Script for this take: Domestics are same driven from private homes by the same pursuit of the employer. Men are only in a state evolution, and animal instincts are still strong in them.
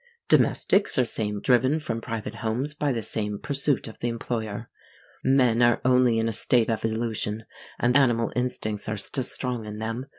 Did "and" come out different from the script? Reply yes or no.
no